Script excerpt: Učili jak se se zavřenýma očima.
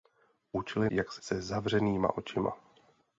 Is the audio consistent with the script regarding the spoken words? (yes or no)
yes